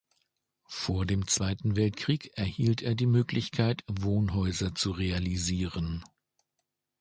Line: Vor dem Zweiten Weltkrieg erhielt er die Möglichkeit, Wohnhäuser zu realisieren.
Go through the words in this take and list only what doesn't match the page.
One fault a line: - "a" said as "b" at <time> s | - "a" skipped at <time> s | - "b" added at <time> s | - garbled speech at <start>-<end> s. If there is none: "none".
none